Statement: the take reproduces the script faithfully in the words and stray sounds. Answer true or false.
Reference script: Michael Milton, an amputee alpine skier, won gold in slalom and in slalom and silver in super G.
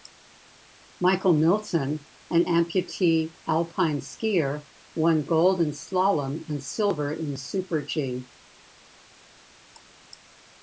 false